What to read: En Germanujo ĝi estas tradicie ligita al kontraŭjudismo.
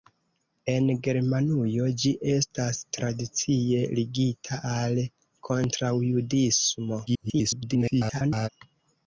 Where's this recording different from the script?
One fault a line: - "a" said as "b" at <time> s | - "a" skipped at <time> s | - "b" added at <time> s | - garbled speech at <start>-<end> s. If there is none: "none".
- garbled speech at 7.1-8.5 s